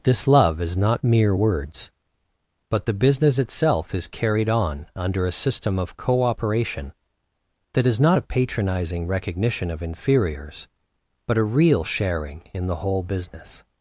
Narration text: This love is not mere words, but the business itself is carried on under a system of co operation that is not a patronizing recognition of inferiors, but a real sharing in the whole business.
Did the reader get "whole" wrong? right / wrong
right